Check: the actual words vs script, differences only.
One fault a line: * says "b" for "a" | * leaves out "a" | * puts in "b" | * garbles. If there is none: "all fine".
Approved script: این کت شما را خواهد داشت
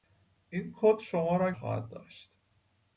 all fine